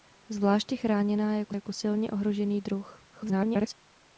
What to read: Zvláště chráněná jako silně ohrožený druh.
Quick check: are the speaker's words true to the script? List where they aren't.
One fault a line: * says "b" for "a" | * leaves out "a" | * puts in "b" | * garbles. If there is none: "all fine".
* puts in "jako"
* garbles